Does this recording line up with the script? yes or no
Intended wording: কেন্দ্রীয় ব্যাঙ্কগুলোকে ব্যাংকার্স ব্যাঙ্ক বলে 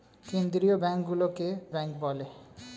no